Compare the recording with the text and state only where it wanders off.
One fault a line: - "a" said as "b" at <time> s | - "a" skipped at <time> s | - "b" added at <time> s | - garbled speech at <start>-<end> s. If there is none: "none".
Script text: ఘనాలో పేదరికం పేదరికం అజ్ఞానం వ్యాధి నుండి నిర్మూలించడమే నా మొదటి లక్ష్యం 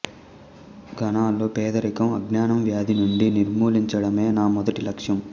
- "పేదరికం" skipped at 2.1 s